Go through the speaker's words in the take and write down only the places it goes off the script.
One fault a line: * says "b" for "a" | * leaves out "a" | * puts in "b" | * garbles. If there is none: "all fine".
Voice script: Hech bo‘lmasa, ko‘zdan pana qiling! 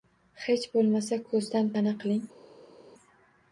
all fine